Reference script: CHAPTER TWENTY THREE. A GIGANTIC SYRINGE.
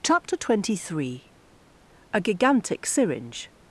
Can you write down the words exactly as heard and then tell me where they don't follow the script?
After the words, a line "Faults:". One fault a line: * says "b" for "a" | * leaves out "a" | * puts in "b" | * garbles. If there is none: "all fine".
CHAPTER TWENTY THREE. A GIGANTIC SYRINGE.
Faults:
all fine